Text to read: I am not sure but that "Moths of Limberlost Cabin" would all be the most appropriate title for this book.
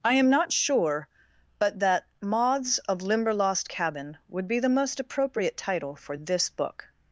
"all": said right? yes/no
no